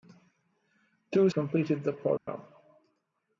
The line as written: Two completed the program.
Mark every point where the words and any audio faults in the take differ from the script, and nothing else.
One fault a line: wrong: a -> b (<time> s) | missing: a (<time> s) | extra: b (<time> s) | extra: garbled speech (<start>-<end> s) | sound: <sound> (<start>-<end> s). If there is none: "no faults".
sound: dropout (2.2-2.3 s)